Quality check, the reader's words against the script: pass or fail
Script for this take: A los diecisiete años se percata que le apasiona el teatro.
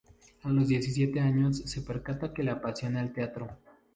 pass